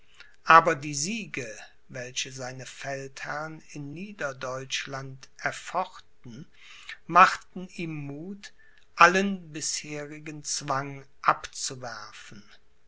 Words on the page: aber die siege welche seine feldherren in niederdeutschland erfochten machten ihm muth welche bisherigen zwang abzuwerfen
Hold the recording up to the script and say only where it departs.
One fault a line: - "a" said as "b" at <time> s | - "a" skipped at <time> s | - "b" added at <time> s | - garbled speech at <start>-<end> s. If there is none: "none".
- "welche" said as "allen" at 9.0 s